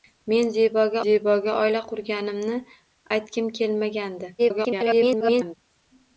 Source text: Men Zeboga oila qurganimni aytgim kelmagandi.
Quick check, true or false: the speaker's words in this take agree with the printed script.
false